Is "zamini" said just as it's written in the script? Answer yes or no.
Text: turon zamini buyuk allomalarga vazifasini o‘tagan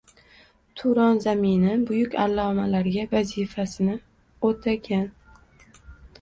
yes